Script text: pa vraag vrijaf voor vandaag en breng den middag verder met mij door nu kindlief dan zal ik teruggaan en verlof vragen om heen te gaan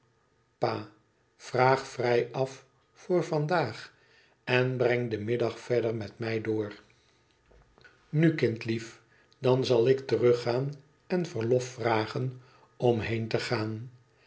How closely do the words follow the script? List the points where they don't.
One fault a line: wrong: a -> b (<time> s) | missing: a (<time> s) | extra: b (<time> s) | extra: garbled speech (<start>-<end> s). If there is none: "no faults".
no faults